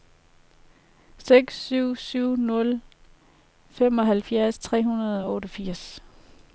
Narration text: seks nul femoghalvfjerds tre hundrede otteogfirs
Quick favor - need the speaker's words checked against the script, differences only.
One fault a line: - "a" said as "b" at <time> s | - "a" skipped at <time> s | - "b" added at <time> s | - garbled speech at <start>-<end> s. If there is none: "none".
- "syv syv" added at 1.6 s
- "og" added at 5.2 s